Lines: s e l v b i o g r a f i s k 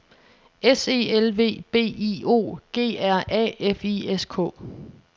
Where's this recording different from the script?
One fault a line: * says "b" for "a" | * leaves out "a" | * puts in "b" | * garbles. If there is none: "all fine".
all fine